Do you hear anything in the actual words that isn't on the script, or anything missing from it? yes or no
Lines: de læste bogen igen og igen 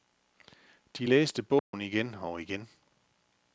no